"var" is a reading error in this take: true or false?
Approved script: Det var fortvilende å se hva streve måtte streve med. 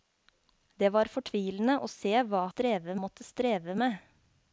false